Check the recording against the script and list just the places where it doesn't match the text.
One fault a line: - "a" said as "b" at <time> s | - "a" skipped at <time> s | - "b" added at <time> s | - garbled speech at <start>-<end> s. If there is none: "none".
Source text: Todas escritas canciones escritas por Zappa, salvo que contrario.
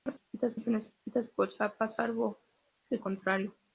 none